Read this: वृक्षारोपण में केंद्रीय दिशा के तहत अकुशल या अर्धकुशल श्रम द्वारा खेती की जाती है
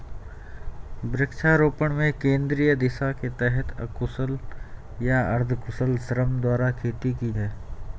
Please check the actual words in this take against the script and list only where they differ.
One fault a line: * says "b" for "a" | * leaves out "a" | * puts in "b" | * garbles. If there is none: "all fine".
* leaves out "जाती"